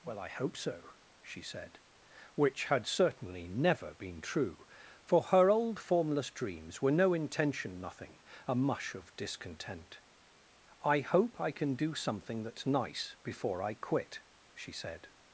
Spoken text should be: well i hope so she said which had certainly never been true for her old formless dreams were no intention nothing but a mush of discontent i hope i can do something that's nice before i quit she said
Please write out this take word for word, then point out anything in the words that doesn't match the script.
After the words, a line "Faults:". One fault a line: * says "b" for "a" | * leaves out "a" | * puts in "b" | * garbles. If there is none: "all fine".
well i hope so she said which had certainly never been true for her old formless dreams were no intention nothing a mush of discontent i hope i can do something that's nice before i quit she said
Faults:
* leaves out "but"